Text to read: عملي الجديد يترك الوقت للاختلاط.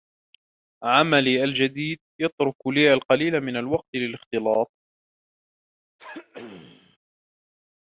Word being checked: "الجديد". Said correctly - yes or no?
yes